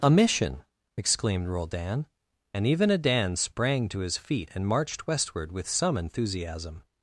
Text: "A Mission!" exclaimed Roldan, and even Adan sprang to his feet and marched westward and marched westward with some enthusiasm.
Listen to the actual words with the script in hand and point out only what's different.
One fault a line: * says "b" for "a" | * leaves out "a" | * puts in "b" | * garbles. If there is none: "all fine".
* leaves out "and marched westward"